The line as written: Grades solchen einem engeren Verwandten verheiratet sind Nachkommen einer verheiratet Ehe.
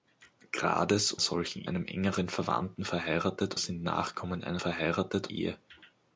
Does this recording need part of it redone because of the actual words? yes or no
no